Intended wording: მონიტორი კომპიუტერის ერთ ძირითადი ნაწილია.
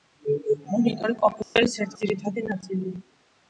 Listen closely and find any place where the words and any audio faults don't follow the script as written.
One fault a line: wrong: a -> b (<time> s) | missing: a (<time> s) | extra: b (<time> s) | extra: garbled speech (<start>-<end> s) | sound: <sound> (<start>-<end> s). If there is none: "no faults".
sound: dropout (1.4-1.6 s)